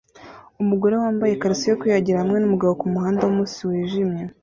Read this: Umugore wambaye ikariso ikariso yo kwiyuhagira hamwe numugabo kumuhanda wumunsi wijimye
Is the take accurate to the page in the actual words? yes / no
no